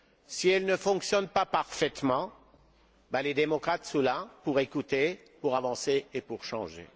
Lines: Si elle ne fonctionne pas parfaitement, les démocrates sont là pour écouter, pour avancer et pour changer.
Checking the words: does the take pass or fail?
pass